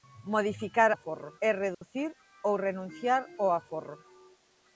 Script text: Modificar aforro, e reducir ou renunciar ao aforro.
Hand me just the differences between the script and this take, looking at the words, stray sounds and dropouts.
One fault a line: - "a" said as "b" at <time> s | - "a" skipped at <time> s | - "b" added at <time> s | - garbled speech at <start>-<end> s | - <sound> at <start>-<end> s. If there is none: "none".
- dropout at 1.7-1.8 s